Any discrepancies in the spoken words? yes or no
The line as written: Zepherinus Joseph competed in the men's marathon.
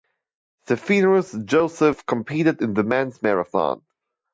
no